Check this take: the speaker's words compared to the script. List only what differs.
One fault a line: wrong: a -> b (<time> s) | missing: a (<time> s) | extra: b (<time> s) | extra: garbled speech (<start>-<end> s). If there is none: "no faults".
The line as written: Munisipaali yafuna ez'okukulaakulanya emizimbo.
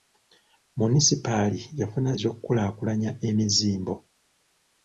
no faults